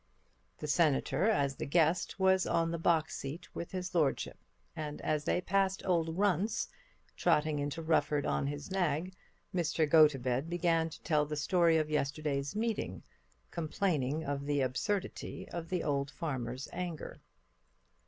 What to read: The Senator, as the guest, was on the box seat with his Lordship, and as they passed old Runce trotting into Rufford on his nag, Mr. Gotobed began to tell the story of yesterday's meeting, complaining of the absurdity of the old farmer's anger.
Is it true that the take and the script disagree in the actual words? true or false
false